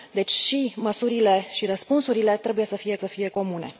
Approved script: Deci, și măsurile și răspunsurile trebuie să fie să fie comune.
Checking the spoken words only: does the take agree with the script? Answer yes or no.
yes